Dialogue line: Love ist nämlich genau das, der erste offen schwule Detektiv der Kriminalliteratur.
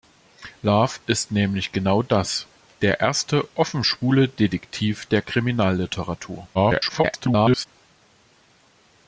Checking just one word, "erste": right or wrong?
right